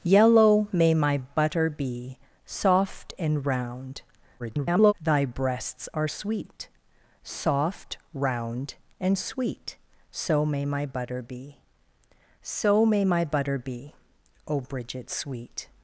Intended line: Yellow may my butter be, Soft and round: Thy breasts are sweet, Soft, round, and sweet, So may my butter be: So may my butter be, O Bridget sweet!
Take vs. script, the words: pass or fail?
fail